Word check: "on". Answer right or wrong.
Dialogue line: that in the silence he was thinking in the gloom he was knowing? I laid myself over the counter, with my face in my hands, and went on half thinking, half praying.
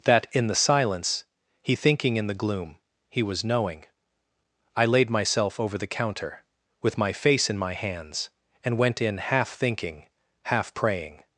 wrong